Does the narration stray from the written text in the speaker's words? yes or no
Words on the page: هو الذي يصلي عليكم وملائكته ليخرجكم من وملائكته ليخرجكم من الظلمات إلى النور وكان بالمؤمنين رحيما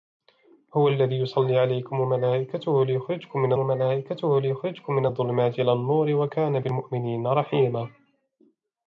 no